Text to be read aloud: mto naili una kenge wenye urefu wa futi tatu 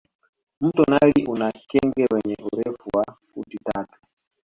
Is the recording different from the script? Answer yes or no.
no